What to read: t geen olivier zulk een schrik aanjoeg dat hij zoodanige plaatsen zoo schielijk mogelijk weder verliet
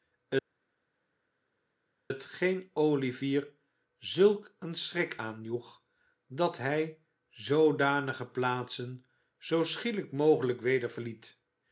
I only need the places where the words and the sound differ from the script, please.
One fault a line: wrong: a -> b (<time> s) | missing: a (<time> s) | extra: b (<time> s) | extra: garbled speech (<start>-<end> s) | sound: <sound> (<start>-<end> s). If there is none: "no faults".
no faults